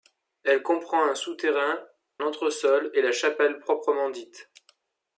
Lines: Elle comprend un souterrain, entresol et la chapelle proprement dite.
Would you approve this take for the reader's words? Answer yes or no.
yes